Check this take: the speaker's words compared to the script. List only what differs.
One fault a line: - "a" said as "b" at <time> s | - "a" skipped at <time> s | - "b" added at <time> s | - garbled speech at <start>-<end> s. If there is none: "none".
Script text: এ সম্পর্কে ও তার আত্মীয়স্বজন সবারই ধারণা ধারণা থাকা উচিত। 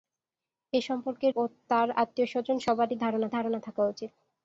none